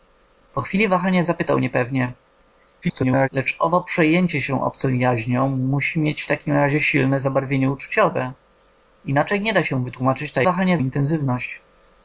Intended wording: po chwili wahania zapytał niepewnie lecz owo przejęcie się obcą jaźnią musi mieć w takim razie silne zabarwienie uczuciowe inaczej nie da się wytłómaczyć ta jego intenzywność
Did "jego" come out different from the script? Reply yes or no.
yes